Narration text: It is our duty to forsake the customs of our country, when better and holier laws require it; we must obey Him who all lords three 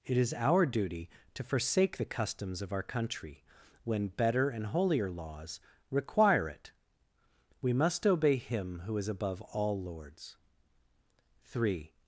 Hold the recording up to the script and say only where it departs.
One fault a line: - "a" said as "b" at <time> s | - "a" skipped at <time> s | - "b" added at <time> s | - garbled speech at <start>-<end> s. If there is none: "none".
- "is above" added at 9.0 s